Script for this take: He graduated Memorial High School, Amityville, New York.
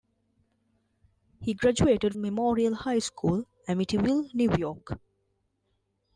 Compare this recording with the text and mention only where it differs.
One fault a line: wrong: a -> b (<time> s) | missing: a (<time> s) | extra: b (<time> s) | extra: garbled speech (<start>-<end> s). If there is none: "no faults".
no faults